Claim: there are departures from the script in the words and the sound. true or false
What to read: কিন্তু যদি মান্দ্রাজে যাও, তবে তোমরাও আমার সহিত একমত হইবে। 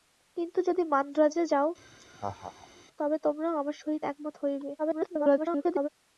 true